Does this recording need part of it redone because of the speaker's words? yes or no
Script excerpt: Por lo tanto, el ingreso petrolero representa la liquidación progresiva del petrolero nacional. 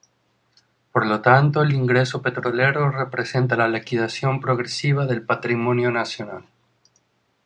yes